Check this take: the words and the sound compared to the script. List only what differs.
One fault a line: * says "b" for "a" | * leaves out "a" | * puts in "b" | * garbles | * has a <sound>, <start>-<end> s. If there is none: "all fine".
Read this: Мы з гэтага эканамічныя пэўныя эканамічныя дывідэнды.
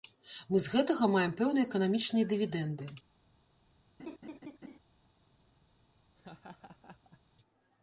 * says "маем" for "эканамічныя"
* has a laugh, 4.0-4.8 s
* has a laugh, 6.2-7.2 s